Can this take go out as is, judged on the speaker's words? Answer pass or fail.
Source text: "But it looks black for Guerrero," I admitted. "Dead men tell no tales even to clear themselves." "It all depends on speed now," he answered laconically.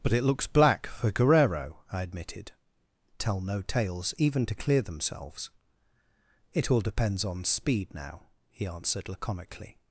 fail